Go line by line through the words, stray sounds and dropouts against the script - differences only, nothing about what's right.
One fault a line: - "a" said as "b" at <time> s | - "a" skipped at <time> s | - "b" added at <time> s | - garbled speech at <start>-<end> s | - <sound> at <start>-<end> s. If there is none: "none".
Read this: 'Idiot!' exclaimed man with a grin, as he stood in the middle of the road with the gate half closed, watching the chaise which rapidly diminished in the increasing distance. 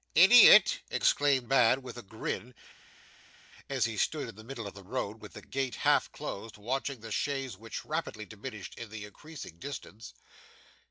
none